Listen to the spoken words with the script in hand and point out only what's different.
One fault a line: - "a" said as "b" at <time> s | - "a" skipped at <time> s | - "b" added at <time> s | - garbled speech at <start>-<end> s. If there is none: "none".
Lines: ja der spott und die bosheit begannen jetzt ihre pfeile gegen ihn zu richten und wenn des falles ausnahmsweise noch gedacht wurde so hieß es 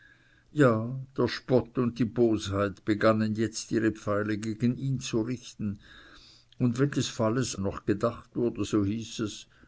- "ausnahmsweise" skipped at 7.5 s